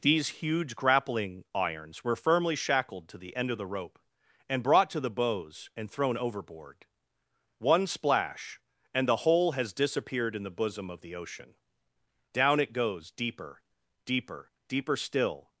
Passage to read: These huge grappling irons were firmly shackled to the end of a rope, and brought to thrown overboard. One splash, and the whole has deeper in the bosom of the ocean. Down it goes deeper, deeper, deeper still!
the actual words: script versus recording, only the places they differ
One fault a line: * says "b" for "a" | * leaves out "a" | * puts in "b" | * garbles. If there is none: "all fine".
* says "the" for "a"
* puts in "the bows and"
* says "disappeared" for "deeper"